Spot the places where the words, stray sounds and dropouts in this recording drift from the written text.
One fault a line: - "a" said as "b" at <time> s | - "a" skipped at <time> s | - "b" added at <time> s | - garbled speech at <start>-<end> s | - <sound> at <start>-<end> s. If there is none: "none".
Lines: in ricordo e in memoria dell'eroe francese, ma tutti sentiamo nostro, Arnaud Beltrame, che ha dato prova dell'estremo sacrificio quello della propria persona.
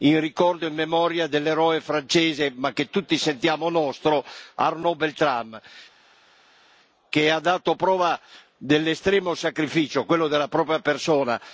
- "che" added at 2.7 s